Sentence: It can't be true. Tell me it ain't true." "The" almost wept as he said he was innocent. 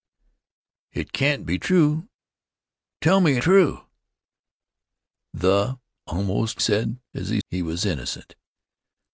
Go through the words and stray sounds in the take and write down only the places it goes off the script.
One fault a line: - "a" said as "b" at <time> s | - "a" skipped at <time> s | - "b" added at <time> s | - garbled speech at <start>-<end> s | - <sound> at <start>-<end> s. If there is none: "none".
- "ain't" skipped at 3.4 s
- "wept" said as "said" at 6.6 s
- "said" skipped at 7.4 s